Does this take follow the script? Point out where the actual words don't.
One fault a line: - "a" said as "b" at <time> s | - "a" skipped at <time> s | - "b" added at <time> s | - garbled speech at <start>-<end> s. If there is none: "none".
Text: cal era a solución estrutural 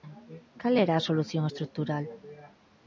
none